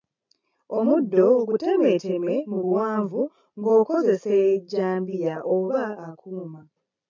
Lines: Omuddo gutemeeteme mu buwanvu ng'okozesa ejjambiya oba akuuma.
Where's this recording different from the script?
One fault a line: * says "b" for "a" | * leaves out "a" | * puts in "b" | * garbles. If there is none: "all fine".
all fine